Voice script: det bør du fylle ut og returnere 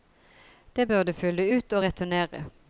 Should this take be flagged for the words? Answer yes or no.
no